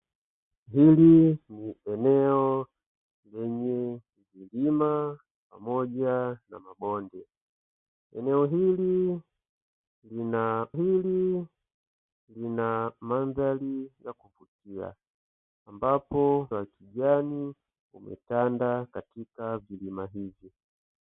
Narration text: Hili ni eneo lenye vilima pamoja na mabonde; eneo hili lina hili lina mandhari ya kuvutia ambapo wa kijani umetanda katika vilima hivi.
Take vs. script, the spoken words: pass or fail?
pass